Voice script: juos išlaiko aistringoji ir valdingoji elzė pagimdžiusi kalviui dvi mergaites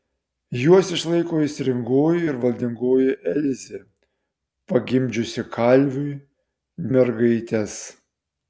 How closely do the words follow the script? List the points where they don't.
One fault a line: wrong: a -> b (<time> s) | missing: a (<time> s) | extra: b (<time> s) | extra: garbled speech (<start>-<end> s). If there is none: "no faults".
missing: dvi (6.1 s)